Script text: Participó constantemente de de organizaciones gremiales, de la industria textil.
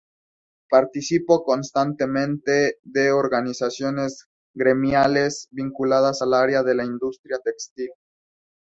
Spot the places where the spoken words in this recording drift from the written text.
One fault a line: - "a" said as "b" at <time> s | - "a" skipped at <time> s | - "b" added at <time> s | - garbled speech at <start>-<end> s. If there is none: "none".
- "de" skipped at 3.1 s
- "vinculadas al área" added at 5.5 s